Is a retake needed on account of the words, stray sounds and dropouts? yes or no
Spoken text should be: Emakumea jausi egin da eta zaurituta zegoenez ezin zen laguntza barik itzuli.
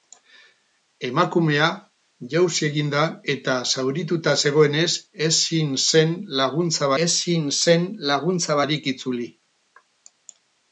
yes